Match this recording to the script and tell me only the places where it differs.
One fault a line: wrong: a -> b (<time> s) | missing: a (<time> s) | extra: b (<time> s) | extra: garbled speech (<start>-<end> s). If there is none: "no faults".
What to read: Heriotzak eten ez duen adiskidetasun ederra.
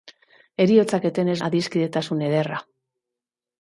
missing: duen (1.4 s)